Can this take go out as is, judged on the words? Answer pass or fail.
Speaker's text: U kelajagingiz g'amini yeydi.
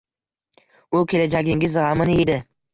pass